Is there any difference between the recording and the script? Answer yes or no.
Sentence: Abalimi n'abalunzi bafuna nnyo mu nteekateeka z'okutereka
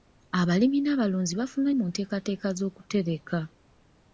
yes